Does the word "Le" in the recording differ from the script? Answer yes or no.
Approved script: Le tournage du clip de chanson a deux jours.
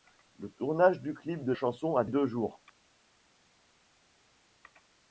no